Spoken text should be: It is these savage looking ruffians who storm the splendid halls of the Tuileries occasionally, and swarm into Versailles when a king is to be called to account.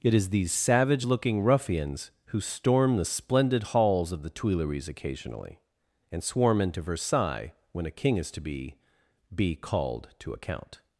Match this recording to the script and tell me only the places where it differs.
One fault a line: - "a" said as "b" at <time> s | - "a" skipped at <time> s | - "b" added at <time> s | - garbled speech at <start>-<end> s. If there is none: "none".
- "be" added at 9.3 s